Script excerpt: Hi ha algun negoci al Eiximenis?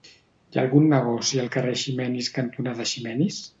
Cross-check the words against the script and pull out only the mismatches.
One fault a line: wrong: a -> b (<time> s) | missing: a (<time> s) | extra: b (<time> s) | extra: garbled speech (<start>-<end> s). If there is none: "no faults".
extra: carrer Eiximenis cantonada (1.6 s)